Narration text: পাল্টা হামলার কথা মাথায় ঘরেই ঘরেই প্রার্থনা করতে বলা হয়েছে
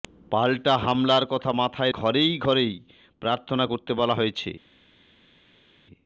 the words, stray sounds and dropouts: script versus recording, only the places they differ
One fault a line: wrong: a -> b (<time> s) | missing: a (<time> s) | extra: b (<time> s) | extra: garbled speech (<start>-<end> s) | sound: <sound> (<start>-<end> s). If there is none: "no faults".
no faults